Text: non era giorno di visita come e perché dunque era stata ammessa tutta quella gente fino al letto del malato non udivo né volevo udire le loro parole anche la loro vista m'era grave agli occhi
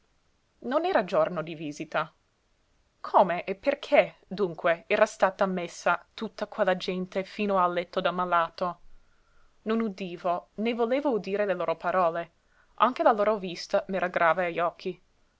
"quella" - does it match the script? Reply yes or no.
yes